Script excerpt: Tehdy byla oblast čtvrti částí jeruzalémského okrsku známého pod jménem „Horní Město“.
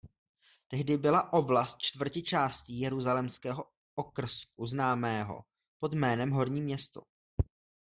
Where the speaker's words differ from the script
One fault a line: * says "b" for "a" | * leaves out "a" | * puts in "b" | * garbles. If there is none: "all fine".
all fine